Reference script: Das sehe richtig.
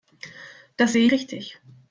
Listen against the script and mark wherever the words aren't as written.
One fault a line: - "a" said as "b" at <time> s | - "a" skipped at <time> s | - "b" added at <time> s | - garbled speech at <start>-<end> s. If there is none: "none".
none